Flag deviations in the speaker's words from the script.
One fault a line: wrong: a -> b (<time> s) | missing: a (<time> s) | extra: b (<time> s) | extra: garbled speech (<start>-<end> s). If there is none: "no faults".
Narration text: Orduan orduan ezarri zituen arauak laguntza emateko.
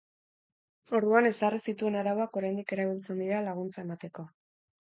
missing: orduan (1.3 s)
extra: oraindik erabiltzen dira (2.4 s)